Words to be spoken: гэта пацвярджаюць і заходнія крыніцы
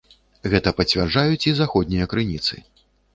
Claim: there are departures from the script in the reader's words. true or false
false